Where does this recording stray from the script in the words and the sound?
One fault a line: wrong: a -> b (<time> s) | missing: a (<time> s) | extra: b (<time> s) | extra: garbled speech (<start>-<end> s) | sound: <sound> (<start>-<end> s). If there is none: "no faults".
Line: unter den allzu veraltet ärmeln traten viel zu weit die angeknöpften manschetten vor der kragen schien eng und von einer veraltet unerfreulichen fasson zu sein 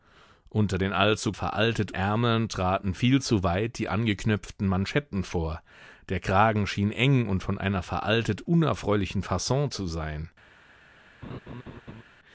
sound: laugh (11.2-12.0 s)